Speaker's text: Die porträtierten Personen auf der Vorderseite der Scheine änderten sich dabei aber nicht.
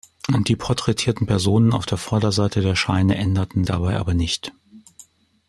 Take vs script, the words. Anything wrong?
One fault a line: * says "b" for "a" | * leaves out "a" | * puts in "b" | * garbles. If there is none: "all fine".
* leaves out "sich"